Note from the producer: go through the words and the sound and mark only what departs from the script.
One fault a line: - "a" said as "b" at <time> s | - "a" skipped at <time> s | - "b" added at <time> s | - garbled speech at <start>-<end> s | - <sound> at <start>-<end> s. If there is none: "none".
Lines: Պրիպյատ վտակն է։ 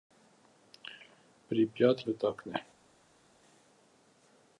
none